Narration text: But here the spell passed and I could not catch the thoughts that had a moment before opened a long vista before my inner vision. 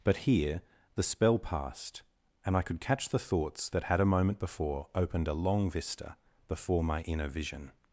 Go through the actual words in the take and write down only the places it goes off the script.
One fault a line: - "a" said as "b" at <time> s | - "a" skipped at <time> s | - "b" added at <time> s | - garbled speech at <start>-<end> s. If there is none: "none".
- "not" skipped at 2.8 s